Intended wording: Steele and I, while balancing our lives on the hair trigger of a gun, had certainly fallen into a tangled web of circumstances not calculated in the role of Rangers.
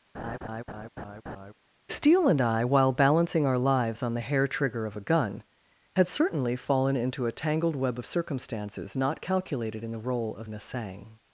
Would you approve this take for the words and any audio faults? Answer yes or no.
no